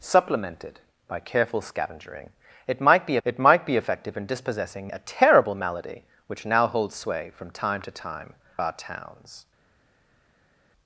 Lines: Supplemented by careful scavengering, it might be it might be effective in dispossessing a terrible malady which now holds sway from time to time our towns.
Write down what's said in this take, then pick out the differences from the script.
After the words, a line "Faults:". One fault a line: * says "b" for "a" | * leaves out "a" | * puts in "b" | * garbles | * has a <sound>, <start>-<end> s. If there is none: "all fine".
Supplemented by careful scavengering, it might be it might be effective in dispossessing a terrible malady which now holds sway from time to time our towns.
Faults:
all fine